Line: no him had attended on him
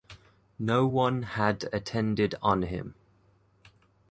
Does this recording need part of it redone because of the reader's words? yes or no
yes